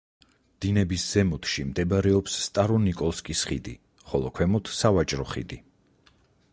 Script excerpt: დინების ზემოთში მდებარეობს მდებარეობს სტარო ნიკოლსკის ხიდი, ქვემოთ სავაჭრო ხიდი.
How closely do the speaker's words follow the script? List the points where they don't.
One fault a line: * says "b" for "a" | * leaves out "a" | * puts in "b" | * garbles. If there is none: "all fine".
* leaves out "მდებარეობს"
* puts in "ხოლო"